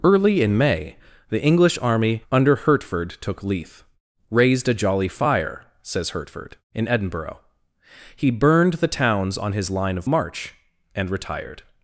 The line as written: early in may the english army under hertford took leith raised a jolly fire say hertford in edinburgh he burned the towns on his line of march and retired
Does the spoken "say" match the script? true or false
false